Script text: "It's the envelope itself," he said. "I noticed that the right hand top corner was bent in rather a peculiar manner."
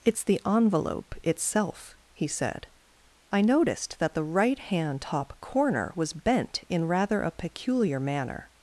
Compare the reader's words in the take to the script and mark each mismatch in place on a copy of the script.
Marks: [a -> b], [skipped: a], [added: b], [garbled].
"It's the envelope itself," he said. "I noticed that the right hand top corner was bent in rather a peculiar manner."